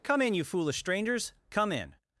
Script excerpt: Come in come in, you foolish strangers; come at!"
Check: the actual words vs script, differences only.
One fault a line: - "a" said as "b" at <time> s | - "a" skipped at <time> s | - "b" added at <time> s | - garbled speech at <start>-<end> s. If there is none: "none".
- "come in" skipped at 0.3 s
- "at" said as "in" at 1.7 s